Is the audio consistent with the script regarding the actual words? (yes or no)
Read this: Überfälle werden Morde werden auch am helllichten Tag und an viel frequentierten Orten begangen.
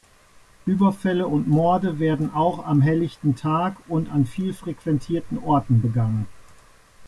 no